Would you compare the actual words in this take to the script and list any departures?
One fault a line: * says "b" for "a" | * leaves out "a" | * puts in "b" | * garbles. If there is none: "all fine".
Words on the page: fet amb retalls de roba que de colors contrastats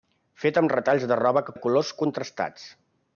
all fine